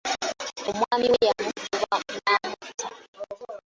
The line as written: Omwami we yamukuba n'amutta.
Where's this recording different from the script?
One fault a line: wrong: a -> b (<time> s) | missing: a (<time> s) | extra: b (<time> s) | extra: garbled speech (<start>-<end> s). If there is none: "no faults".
no faults